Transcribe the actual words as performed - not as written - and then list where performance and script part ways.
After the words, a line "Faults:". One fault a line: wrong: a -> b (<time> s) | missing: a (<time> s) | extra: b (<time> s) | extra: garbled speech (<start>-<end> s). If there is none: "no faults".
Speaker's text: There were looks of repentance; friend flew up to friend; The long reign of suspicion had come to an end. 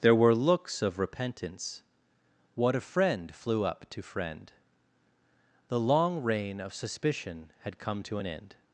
There were looks of repentance; what a friend flew up to friend; The long reign of suspicion had come to an end.
Faults:
extra: what a (2.5 s)